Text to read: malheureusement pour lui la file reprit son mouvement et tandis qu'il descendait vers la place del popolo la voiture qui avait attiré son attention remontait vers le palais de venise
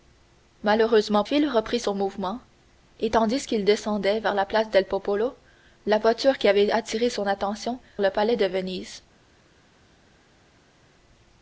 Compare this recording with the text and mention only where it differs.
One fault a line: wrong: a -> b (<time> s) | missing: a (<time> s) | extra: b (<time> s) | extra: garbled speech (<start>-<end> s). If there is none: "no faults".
missing: pour lui la (1.2 s)
missing: remontait vers (7.8 s)